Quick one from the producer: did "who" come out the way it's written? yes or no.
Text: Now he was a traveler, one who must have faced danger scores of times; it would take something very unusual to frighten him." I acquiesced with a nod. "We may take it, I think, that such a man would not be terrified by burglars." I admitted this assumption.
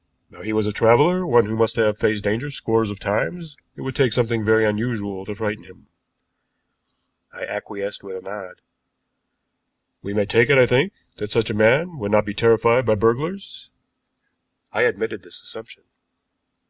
yes